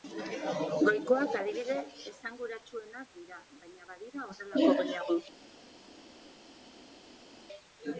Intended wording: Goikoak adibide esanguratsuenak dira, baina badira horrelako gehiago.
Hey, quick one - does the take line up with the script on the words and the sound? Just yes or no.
yes